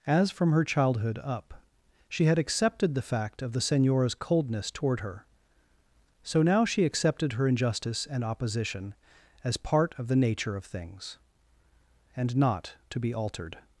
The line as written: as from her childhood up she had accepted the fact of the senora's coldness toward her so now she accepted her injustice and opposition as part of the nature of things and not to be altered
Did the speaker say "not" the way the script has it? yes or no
yes